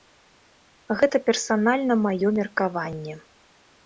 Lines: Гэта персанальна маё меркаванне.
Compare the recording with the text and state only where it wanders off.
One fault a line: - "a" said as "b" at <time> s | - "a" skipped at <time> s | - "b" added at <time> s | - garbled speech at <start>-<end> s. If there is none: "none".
none